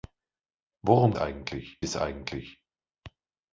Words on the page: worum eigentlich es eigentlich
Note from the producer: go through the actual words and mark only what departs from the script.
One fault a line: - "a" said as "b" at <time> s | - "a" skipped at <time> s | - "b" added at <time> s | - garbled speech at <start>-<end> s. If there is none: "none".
none